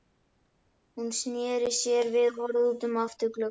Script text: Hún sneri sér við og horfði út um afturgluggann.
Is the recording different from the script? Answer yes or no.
no